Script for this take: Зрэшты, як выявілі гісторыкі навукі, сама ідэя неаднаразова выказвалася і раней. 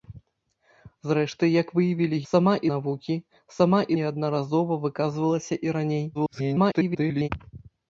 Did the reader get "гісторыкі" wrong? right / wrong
wrong